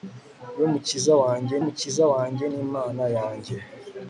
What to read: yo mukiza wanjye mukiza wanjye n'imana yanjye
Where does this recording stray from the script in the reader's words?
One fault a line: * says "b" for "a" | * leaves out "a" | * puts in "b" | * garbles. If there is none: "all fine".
all fine